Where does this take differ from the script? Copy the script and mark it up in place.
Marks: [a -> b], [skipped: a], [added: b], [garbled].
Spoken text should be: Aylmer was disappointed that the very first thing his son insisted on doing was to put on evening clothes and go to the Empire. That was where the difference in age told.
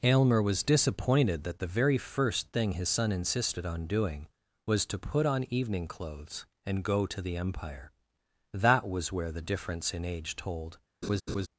Aylmer was disappointed that the very first thing his son insisted on doing was to put on evening clothes and go to the Empire. That was where the difference in age told.